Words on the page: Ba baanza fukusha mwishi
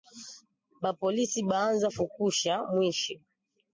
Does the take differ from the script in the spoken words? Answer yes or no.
yes